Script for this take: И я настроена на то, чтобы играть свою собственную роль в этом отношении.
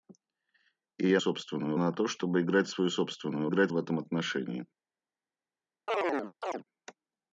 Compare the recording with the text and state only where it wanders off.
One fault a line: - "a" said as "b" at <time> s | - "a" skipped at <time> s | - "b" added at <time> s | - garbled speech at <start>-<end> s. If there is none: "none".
- "настроена" said as "собственную" at 1.2 s
- "роль" said as "играть" at 3.5 s